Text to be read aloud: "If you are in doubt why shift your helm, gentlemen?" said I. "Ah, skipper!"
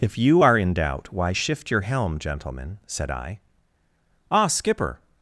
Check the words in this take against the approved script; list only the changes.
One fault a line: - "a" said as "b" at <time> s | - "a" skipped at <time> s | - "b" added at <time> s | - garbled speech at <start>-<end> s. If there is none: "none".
none